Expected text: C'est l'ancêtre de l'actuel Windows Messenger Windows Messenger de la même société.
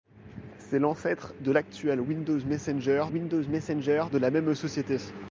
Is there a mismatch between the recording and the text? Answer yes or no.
no